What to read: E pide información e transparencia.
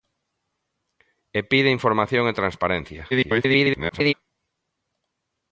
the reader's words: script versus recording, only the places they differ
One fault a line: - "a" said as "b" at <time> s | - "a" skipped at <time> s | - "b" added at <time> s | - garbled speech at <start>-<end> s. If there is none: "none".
- garbled speech at 3.1-4.1 s